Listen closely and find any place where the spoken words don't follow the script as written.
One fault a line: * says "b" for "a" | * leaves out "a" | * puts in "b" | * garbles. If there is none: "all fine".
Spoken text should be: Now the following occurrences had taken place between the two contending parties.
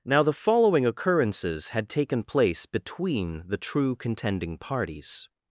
* says "true" for "two"